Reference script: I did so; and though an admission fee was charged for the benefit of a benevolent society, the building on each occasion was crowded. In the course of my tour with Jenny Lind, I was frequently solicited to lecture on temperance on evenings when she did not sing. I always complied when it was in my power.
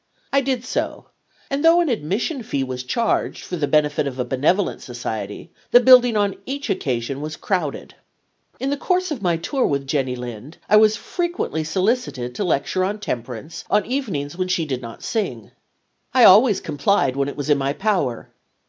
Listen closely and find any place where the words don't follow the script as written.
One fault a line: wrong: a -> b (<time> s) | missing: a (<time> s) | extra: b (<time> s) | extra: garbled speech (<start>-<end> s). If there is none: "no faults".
no faults